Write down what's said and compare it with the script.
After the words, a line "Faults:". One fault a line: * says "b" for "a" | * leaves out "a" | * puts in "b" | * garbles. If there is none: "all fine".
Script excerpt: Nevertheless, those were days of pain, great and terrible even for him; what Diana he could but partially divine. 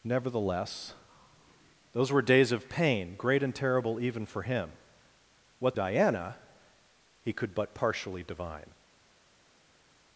Nevertheless, those were days of pain, great and terrible even for him; what Diana he could but partially divine.
Faults:
all fine